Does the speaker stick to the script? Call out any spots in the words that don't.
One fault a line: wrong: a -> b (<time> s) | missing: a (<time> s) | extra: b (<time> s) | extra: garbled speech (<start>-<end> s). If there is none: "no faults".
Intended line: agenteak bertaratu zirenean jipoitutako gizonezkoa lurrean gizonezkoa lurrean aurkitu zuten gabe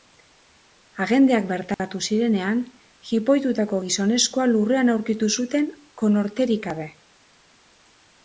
missing: gizonezkoa lurrean (4.9 s)
extra: konorterik (6.0 s)